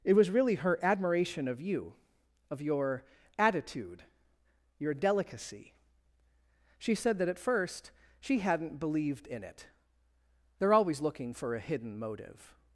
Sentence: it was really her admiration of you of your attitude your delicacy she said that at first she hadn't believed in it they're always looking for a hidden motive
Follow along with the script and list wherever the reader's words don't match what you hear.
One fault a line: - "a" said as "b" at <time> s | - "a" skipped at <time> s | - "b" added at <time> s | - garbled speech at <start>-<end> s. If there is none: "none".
none